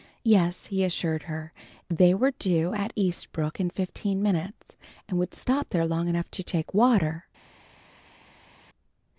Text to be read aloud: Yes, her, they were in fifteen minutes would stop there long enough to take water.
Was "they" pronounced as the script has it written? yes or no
yes